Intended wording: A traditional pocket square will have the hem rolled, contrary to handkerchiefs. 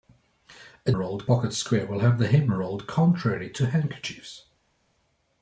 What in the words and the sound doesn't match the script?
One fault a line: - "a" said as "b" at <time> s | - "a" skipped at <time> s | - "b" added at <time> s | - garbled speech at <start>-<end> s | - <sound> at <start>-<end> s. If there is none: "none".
- "traditional" said as "rolled" at 0.9 s